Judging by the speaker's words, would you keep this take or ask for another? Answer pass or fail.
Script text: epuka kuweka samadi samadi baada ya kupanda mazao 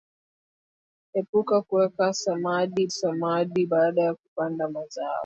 pass